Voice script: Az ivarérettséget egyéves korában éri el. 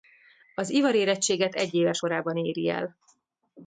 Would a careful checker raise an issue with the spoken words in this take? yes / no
no